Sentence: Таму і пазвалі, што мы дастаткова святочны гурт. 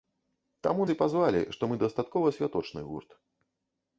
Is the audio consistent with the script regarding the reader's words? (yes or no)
yes